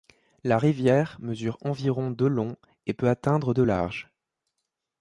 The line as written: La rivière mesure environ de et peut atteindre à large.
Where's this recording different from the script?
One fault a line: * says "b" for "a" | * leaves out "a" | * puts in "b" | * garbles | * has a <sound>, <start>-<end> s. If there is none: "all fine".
* puts in "long"
* says "de" for "à"